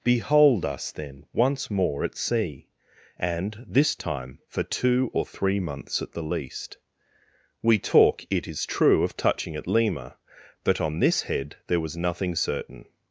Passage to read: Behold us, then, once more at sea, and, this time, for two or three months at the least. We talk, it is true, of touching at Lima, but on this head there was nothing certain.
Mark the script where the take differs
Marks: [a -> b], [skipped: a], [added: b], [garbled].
Behold us, then, once more at sea, and, this time, for two or three months at the least. We talk, it is true, of touching at Lima, but on this head there was nothing certain.